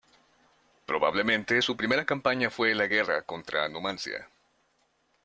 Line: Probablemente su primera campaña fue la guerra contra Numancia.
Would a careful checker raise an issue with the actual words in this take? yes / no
no